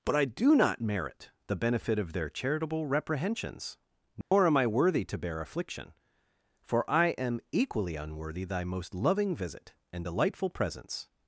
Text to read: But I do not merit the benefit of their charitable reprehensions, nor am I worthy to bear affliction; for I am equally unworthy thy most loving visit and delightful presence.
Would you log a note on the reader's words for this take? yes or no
no